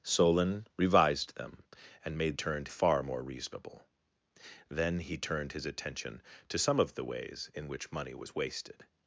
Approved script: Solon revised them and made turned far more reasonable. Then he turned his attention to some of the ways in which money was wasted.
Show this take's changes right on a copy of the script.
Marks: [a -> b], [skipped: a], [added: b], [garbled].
Solon revised them and made turned far more reasonable. Then he turned his attention to some of the ways in which money was wasted.